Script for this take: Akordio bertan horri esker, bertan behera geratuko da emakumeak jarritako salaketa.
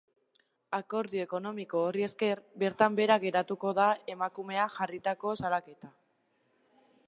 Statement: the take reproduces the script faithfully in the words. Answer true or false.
false